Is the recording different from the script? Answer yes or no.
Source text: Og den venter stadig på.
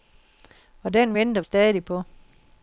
no